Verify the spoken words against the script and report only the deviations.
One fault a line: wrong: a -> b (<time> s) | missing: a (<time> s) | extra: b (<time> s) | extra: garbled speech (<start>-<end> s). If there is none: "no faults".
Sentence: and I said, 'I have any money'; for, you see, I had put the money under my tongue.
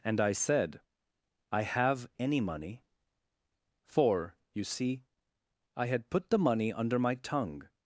no faults